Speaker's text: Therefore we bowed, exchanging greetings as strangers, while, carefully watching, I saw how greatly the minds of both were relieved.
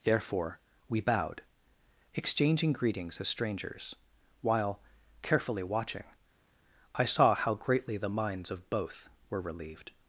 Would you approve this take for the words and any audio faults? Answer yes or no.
yes